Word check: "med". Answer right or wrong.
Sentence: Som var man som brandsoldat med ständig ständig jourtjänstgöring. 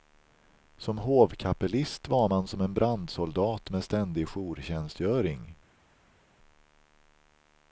right